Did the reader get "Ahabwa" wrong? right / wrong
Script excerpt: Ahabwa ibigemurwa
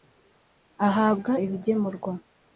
right